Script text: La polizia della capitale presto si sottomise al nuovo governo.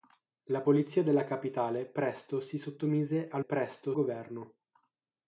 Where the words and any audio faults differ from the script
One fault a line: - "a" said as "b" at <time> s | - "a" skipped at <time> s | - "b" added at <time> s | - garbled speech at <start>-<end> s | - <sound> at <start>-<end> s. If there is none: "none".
- "nuovo" said as "presto" at 3.4 s